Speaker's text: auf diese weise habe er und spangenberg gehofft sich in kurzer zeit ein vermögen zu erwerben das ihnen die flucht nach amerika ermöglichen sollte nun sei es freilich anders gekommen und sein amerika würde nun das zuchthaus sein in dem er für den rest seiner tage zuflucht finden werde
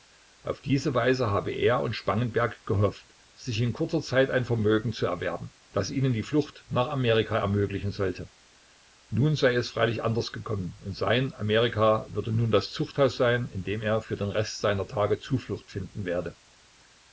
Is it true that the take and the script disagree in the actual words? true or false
false